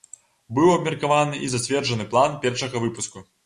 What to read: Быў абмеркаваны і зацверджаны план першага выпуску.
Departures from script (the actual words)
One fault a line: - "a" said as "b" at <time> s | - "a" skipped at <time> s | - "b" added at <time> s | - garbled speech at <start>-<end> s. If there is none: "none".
none